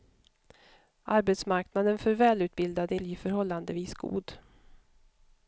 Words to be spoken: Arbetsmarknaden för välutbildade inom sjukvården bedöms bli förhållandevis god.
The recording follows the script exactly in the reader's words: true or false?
false